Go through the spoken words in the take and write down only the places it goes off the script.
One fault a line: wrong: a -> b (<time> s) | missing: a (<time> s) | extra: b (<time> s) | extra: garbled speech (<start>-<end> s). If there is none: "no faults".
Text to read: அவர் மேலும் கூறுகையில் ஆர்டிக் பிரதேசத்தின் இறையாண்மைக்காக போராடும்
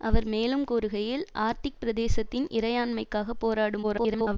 extra: garbled speech (3.8-4.4 s)